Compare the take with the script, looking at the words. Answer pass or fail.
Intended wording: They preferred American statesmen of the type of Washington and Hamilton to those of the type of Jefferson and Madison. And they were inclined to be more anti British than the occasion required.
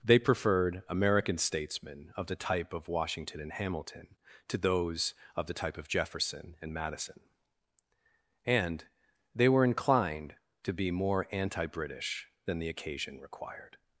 pass